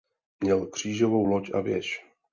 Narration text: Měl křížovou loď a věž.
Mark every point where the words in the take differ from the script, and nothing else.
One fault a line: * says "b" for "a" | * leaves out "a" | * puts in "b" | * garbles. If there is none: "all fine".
all fine